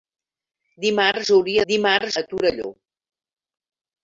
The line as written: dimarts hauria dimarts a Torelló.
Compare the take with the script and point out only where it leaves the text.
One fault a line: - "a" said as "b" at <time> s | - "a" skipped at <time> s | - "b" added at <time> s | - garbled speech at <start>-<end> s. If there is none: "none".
none